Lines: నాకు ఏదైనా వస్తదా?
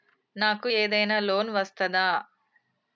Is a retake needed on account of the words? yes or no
yes